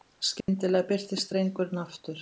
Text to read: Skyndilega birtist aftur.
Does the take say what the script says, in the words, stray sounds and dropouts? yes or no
no